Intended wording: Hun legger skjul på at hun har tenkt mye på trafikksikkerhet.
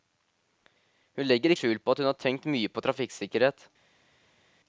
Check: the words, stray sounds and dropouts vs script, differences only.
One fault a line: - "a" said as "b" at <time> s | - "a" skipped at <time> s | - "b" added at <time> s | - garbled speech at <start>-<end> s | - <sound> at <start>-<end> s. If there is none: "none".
none